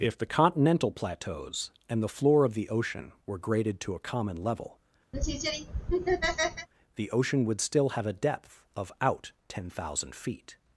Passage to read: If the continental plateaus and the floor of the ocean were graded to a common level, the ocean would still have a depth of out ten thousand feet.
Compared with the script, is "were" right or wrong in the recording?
right